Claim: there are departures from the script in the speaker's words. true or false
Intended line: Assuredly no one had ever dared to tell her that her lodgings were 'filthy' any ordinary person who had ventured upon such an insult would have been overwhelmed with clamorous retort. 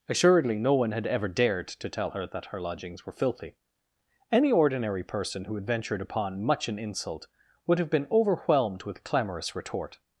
true